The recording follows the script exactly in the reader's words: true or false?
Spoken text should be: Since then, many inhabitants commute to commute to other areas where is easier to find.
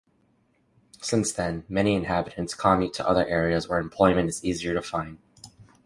false